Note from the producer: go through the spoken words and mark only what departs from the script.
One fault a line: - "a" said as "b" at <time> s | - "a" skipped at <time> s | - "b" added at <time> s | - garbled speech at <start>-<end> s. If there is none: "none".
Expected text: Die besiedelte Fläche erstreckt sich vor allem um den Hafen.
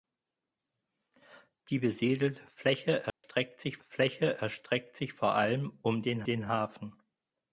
- "Fläche erstreckt sich" added at 3.8 s
- "den" added at 6.2 s